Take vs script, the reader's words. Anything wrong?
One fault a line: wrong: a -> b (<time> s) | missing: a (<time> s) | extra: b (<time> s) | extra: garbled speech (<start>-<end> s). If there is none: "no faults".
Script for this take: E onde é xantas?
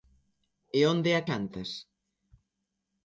no faults